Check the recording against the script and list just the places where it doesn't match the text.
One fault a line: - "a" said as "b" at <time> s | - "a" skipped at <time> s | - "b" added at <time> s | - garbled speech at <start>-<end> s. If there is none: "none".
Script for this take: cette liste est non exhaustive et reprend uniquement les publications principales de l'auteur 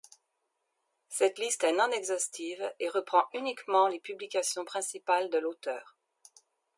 none